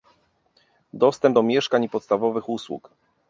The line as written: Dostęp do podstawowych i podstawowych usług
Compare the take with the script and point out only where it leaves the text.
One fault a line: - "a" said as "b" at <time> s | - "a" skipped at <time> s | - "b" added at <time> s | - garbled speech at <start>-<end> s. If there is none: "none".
- "podstawowych" said as "mieszkań" at 1.4 s